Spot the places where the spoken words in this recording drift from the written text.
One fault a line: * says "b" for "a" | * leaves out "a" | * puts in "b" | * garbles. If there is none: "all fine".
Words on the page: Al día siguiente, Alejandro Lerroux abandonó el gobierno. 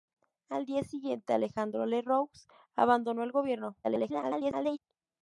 * garbles